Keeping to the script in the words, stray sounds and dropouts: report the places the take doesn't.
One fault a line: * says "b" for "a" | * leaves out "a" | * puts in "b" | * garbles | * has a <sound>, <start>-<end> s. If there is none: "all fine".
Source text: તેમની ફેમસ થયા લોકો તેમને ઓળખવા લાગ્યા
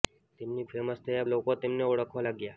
all fine